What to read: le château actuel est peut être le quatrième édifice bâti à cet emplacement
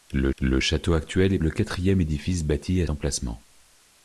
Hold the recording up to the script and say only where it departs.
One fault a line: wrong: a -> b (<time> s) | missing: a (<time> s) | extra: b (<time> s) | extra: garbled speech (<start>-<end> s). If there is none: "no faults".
extra: le (0.4 s)
missing: peut être (1.4 s)
missing: cet (2.9 s)